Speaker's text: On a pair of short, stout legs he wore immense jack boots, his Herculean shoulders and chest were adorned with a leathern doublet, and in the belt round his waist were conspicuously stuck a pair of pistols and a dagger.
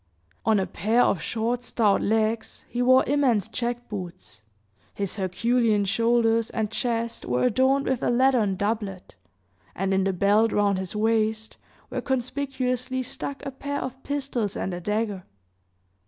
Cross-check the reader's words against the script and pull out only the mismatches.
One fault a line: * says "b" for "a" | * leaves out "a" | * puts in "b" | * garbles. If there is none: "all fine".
all fine